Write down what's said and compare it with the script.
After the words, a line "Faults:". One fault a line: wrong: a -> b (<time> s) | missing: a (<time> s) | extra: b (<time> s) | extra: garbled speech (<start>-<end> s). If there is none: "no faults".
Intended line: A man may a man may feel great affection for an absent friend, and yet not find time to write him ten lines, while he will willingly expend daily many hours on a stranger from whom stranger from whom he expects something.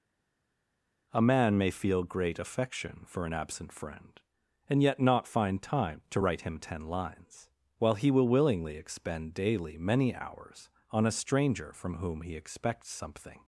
A man may feel great affection for an absent friend, and yet not find time to write him ten lines, while he will willingly expend daily many hours on a stranger from whom he expects something.
Faults:
missing: a man may (1.7 s)
missing: stranger from whom (12.2 s)